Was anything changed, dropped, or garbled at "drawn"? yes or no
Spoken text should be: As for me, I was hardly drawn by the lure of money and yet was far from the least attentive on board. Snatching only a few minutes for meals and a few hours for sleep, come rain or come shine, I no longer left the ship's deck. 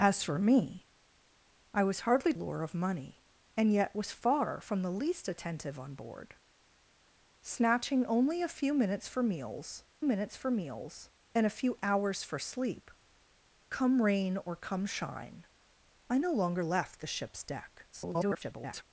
yes